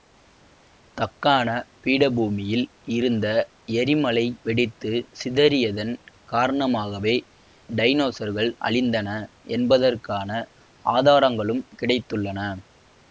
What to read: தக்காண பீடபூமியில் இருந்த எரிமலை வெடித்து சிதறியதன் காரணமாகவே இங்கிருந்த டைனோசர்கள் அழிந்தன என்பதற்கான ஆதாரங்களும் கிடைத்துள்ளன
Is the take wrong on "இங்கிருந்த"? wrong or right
wrong